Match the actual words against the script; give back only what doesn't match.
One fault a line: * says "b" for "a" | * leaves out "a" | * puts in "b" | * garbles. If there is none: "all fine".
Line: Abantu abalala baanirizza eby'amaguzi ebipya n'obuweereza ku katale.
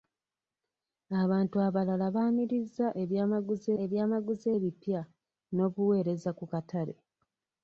* puts in "eby'amaguzi"